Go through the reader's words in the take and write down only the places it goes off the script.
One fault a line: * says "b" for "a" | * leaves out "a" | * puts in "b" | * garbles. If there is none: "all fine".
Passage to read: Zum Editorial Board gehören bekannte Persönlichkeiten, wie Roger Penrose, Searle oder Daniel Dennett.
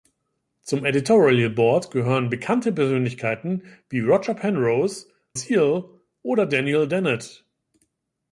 all fine